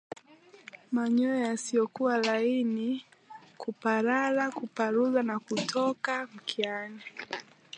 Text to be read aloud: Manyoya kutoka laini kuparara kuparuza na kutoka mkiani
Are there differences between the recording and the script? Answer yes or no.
yes